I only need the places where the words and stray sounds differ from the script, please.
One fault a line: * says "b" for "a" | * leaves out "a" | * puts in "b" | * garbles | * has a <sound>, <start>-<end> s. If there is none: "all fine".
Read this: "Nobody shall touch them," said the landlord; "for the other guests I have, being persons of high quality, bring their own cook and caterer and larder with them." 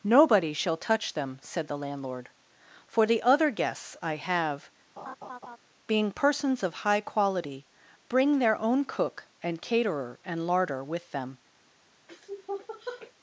* has a laugh, 5.0-5.6 s
* has a sniff, 12.1-13.1 s